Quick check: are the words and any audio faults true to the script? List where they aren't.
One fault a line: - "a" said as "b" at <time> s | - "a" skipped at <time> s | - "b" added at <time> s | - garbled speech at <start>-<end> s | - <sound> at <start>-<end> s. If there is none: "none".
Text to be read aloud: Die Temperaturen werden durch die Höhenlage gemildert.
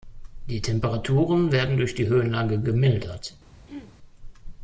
- throat clearing at 3.7-3.9 s